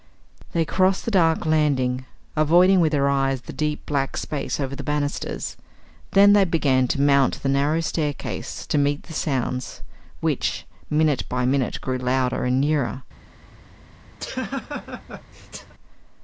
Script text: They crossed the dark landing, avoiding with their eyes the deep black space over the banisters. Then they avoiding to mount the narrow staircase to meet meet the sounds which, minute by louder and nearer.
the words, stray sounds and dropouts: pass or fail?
fail